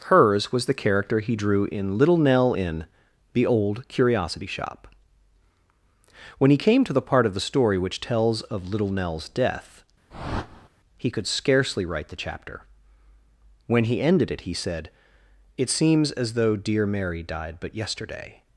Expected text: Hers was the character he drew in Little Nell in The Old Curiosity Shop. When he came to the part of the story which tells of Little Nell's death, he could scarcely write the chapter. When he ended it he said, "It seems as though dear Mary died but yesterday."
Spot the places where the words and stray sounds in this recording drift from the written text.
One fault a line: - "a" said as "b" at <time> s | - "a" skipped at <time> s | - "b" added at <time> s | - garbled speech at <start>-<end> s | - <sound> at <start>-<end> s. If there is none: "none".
- whoosh at 10.1-10.7 s